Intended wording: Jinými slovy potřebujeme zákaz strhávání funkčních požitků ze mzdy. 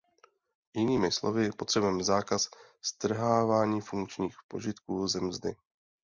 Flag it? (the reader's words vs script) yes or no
no